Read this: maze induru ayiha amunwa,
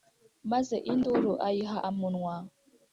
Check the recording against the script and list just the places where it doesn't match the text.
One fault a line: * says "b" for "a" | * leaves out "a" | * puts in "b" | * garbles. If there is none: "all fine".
all fine